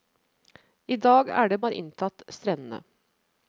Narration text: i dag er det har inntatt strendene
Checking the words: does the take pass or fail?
pass